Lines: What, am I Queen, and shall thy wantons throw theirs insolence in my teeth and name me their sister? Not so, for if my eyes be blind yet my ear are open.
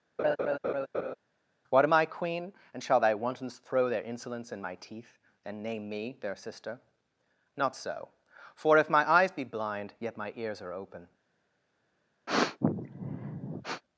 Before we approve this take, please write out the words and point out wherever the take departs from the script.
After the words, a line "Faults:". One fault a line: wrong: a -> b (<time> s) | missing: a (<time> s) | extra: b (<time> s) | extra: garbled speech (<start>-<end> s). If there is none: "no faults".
What, am I Queen, and shall thy wantons throw their insolence in my teeth and name me their sister? Not so, for if my eyes be blind yet my ears are open.
Faults:
wrong: theirs -> their (3.9 s)
wrong: ear -> ears (10.4 s)